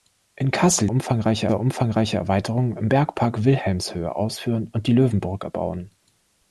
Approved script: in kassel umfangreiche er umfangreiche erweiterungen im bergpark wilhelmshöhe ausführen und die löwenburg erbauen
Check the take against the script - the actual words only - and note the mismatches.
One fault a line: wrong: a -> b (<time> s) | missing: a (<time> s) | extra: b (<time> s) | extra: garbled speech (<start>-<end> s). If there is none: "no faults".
no faults